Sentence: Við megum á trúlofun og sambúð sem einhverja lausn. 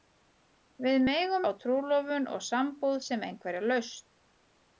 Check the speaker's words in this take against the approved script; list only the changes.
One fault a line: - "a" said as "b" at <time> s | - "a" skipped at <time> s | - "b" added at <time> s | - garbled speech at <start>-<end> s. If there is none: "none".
none